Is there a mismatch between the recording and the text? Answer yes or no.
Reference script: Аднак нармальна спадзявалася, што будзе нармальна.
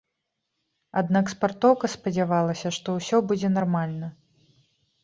yes